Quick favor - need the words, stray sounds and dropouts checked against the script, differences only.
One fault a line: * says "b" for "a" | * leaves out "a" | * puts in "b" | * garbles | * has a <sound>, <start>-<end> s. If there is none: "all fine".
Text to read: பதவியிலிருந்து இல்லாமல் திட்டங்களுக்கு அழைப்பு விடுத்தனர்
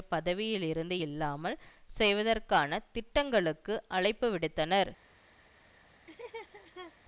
* puts in "செய்வதற்கான"
* has a laugh, 6.1-6.9 s